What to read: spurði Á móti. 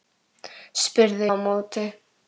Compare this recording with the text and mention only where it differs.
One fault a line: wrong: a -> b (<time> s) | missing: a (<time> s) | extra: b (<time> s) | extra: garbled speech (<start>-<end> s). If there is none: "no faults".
no faults